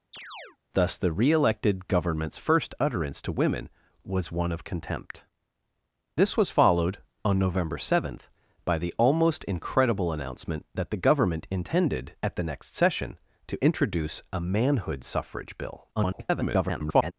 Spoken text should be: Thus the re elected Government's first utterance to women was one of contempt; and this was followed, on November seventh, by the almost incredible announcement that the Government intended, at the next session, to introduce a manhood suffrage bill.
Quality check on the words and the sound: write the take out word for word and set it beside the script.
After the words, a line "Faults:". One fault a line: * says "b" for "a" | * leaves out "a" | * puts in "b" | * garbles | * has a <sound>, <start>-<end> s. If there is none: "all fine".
Thus the re elected Government's first utterance to women was one of contempt; this was followed, on November seventh, by the almost incredible announcement that the Government intended, at the next session, to introduce a manhood suffrage bill. [garbled]
Faults:
* has a chirp, 0.1-0.6 s
* leaves out "and"
* garbles